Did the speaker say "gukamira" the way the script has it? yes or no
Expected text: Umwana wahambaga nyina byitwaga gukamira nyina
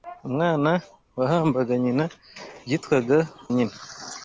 no